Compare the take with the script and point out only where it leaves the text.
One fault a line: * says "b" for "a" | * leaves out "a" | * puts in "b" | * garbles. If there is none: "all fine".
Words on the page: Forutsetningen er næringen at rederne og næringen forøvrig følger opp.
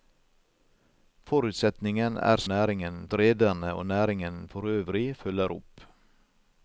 all fine